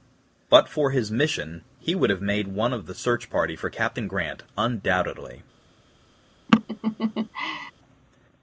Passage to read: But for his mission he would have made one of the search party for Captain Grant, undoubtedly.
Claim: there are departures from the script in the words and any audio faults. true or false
true